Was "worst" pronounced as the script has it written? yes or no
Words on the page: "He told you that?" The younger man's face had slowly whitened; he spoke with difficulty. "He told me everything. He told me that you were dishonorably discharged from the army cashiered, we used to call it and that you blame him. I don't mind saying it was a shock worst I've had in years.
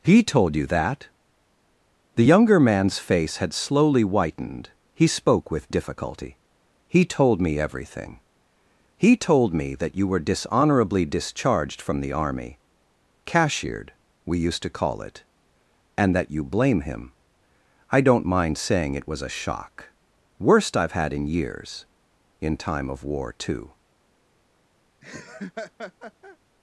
yes